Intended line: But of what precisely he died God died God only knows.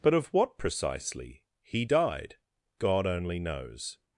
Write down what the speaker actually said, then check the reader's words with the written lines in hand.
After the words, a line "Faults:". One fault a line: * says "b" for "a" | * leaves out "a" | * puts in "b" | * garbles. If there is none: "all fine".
But of what precisely he died God only knows.
Faults:
* leaves out "died God"